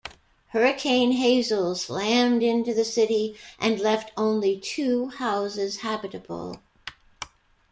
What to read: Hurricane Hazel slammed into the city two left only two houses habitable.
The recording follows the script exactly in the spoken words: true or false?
false